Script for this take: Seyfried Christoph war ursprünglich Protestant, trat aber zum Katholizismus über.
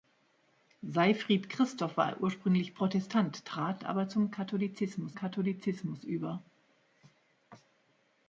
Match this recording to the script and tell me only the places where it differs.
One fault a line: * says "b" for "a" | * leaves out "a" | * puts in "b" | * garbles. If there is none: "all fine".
* puts in "Katholizismus"